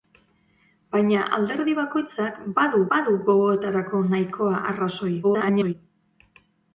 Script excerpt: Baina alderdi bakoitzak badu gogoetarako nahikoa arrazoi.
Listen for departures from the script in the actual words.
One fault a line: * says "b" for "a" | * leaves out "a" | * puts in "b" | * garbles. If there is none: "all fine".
* puts in "badu"
* garbles